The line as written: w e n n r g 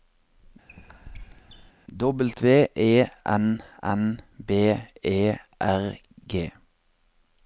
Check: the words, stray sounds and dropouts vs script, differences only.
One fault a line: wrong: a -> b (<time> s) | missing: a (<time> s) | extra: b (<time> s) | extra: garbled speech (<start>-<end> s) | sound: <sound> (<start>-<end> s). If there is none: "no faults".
sound: squeak (0.7-1.7 s)
extra: b e (4.4 s)